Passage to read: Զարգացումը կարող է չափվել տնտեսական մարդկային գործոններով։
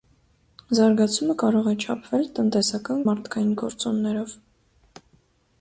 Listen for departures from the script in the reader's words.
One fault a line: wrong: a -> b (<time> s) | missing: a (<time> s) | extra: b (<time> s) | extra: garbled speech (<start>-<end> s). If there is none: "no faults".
no faults